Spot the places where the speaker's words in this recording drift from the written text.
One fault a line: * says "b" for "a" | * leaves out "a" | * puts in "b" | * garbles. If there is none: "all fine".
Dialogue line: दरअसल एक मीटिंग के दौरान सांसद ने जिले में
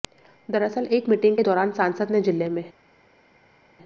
all fine